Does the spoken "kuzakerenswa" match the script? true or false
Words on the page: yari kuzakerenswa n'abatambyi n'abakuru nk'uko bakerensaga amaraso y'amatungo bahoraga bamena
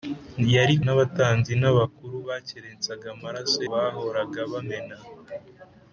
false